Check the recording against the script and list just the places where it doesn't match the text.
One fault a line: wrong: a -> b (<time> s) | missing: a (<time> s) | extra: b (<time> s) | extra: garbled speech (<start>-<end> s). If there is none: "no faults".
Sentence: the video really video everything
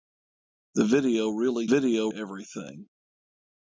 no faults